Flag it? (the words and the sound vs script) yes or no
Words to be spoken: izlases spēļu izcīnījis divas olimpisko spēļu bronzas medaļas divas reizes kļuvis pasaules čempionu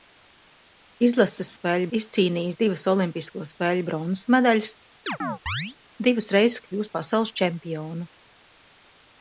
yes